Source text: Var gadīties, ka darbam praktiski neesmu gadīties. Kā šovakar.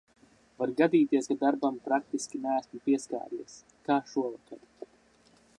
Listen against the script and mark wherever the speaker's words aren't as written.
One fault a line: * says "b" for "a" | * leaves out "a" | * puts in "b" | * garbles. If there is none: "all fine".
* says "pieskāries" for "gadīties"